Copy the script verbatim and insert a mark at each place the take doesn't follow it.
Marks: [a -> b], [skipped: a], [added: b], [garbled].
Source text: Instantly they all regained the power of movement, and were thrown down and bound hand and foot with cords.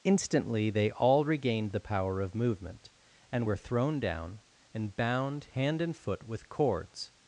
Instantly they all regained the power of movement, and were thrown down and bound hand and foot with cords.